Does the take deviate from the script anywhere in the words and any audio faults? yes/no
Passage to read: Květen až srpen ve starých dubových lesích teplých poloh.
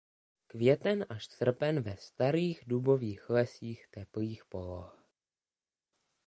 no